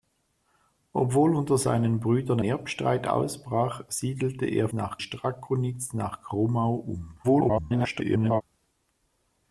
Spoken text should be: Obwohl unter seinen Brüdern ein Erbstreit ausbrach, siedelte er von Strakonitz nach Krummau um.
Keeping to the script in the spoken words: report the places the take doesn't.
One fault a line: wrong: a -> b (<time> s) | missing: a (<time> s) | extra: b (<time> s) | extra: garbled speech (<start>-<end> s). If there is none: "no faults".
missing: ein (2.4 s)
wrong: von -> nach (4.7 s)
extra: garbled speech (7.2-8.4 s)